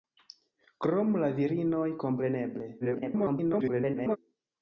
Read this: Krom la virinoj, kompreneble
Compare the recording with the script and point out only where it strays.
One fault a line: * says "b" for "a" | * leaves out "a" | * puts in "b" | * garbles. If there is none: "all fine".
* garbles